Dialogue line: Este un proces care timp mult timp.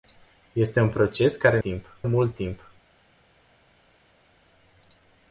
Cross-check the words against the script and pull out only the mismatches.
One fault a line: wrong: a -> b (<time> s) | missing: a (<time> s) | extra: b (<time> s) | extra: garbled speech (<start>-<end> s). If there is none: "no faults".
no faults